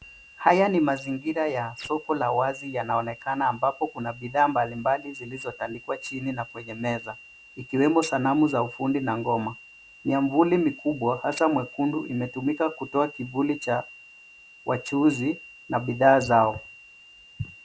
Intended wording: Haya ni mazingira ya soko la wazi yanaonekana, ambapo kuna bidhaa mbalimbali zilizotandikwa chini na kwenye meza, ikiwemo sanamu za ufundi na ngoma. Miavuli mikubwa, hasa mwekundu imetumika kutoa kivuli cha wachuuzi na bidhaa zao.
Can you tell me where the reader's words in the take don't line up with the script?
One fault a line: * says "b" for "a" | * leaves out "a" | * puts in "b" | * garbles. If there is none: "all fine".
all fine